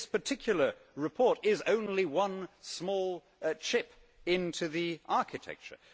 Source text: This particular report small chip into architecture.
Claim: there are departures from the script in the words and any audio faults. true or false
true